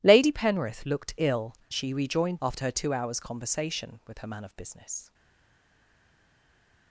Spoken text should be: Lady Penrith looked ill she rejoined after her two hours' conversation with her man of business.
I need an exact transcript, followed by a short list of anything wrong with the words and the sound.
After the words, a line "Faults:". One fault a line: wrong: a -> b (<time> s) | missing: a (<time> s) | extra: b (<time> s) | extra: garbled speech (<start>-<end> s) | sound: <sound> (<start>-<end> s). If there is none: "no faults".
Lady Penrith looked ill she rejoined after her two hours' conversation with her man of business.
Faults:
no faults